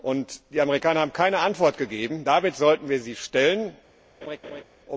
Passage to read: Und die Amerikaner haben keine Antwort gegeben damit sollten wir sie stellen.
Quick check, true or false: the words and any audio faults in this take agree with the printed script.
false